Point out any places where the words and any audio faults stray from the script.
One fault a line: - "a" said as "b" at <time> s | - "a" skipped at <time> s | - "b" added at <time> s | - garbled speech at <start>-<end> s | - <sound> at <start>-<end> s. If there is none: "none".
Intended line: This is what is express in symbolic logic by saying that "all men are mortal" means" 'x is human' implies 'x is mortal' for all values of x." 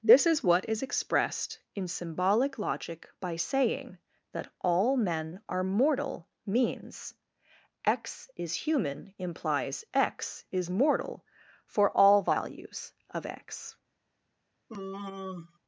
- "express" said as "expressed" at 0.8 s
- sigh at 14.7-15.6 s